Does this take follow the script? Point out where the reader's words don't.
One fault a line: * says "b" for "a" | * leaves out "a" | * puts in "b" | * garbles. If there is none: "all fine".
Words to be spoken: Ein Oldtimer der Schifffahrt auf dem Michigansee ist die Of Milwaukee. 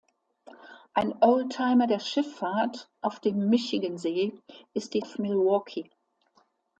all fine